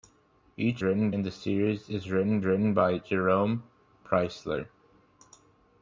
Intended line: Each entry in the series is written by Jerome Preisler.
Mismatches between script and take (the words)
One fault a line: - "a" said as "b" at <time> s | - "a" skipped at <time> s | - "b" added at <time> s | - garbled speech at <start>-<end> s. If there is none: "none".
- "entry" said as "written" at 0.8 s
- "written" added at 2.4 s